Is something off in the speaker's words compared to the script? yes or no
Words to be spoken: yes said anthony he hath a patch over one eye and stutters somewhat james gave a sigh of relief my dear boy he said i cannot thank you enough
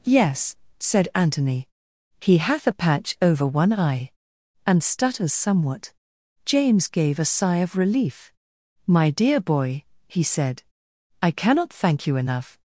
no